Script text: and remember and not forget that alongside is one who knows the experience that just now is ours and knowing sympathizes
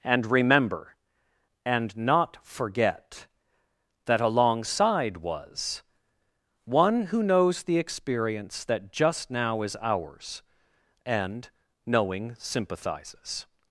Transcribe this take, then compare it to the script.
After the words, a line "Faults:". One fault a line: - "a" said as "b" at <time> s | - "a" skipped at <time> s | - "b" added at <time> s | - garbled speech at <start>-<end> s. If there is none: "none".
and remember and not forget that alongside was one who knows the experience that just now is ours and knowing sympathizes
Faults:
- "is" said as "was" at 5.2 s